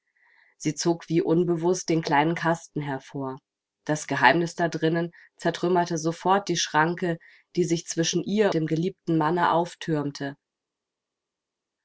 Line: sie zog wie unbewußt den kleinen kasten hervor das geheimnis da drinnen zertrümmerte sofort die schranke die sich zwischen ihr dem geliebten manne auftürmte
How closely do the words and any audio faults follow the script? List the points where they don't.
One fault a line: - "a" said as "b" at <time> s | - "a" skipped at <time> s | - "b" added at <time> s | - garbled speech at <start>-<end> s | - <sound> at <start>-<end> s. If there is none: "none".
none